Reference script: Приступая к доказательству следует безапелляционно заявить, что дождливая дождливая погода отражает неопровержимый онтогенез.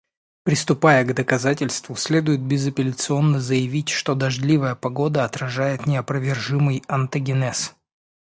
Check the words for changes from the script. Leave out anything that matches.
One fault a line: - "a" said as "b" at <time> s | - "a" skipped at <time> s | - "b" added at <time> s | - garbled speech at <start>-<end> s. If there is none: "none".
- "дождливая" skipped at 4.7 s